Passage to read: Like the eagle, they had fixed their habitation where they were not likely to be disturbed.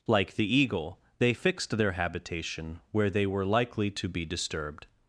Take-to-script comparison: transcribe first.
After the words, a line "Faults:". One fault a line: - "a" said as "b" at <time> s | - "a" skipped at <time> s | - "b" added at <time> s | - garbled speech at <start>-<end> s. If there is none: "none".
Like the eagle, they fixed their habitation where they were likely to be disturbed.
Faults:
- "had" skipped at 1.3 s
- "not" skipped at 3.4 s